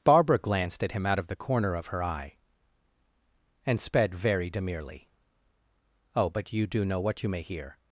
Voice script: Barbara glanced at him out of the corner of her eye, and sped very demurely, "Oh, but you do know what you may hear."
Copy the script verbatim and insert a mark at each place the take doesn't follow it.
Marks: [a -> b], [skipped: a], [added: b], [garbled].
Barbara glanced at him out of the corner of her eye, and sped very demurely, "Oh, but you do know what you may hear."